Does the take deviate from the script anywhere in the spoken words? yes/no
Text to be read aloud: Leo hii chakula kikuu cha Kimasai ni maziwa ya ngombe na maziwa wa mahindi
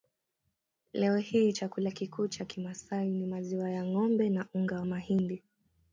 yes